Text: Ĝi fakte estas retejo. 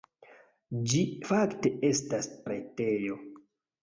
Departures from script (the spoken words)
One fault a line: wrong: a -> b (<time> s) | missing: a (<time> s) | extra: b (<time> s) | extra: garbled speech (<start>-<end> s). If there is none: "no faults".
no faults